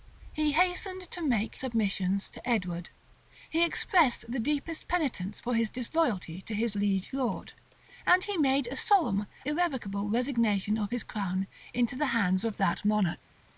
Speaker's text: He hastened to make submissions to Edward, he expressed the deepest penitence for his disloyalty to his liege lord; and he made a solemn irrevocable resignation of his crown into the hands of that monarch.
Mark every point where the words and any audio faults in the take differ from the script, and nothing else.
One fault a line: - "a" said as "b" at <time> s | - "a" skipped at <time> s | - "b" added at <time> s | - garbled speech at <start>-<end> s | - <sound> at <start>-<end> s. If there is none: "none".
none